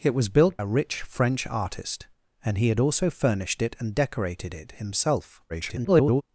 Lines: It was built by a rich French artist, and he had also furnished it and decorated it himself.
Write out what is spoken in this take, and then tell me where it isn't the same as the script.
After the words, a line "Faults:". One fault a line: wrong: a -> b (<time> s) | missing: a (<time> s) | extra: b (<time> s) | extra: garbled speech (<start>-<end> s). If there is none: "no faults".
It was built a rich French artist, and he had also furnished it and decorated it himself. [garbled]
Faults:
missing: by (0.6 s)
extra: garbled speech (5.5-6.2 s)